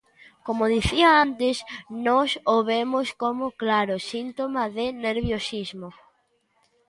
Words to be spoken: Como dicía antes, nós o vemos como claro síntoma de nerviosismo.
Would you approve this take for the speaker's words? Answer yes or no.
yes